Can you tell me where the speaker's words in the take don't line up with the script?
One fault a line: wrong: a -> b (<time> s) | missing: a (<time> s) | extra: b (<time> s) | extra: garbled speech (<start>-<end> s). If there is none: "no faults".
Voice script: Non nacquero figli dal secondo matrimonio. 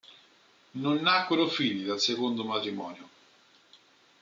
no faults